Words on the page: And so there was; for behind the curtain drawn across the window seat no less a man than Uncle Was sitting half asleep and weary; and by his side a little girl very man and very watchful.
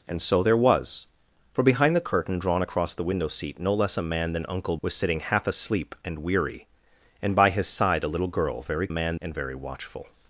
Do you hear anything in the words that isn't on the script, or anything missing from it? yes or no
no